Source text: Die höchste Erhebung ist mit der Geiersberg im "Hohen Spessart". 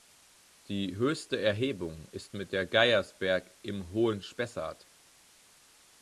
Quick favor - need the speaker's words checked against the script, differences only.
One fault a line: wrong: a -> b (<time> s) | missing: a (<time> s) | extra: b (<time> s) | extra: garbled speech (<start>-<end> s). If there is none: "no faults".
no faults